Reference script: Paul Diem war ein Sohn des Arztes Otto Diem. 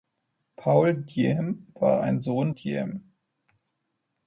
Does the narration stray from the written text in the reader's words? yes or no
yes